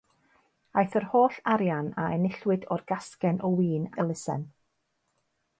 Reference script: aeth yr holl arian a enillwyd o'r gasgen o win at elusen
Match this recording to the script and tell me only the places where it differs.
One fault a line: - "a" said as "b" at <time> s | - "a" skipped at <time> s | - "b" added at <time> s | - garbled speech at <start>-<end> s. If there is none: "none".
- "at" skipped at 3.9 s